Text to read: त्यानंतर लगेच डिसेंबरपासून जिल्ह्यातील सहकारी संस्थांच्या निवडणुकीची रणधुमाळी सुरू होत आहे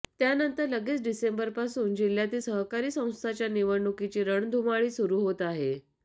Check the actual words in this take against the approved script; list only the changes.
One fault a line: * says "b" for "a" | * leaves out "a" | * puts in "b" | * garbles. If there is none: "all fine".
all fine